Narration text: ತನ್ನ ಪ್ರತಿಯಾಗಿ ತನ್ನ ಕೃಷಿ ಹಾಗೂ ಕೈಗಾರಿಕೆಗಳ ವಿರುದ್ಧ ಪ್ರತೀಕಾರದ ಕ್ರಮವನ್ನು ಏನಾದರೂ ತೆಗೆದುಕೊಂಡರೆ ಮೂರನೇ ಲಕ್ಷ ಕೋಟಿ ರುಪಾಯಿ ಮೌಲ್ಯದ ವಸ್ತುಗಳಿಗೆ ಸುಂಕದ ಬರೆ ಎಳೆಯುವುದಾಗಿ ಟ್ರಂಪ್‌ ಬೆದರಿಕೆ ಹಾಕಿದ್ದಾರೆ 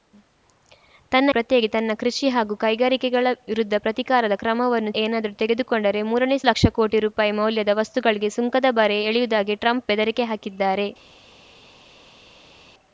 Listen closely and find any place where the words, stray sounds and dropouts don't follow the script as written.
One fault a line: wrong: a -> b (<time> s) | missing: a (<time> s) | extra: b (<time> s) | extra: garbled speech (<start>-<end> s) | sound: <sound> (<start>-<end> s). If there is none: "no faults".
no faults